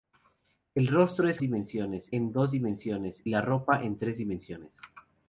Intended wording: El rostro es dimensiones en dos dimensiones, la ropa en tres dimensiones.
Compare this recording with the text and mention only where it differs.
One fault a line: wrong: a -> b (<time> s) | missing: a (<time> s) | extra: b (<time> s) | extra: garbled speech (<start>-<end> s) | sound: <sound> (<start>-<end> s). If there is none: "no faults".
no faults